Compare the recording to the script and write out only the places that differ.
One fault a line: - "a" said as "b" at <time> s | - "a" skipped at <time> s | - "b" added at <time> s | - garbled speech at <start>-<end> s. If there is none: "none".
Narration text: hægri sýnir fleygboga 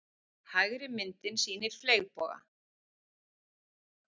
- "myndin" added at 0.9 s